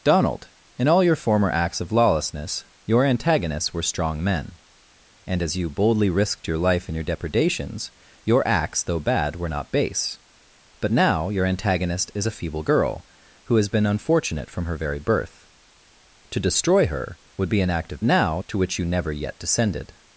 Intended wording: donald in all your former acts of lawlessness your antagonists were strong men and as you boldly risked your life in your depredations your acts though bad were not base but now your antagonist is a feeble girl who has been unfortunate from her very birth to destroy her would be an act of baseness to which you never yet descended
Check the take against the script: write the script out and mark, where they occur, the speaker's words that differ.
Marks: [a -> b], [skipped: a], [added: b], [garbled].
donald in all your former acts of lawlessness your antagonists were strong men and as you boldly risked your life in your depredations your acts though bad were not base but now your antagonist is a feeble girl who has been unfortunate from her very birth to destroy her would be an act of [baseness -> now] to which you never yet descended